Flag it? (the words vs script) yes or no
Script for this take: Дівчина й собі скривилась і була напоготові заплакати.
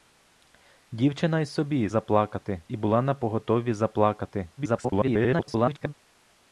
yes